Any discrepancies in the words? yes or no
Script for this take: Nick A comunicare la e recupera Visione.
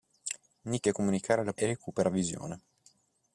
no